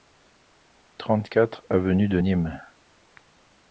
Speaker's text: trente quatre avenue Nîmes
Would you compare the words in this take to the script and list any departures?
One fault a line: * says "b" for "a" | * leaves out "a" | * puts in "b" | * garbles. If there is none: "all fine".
* puts in "de"